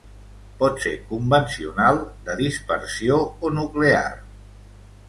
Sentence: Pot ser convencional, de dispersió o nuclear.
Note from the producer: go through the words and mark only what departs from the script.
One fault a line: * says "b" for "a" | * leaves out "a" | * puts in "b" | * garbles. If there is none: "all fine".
all fine